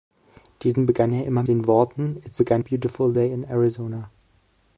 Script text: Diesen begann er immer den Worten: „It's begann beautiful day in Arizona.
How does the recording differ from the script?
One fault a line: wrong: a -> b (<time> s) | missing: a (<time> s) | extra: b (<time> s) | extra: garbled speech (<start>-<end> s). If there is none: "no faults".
no faults